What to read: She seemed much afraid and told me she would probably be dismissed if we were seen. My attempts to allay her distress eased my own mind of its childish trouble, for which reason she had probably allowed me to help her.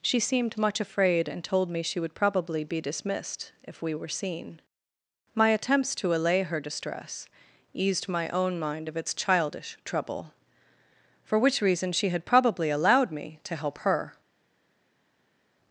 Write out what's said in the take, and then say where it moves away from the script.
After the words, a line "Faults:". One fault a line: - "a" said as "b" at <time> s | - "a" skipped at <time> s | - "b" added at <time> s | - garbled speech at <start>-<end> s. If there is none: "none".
She seemed much afraid and told me she would probably be dismissed if we were seen. My attempts to allay her distress eased my own mind of its childish trouble, for which reason she had probably allowed me to help her.
Faults:
none